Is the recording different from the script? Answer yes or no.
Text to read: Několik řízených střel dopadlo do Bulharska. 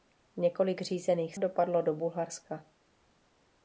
yes